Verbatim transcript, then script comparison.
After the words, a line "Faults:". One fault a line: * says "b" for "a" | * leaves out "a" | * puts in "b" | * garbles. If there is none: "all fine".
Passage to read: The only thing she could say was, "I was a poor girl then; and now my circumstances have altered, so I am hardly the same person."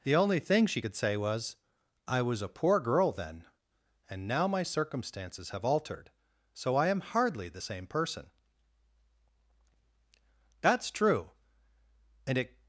The only thing she could say was, "I was a poor girl then; and now my circumstances have altered, so I am hardly the same person." "That's true. And it
Faults:
* puts in "That's true And it"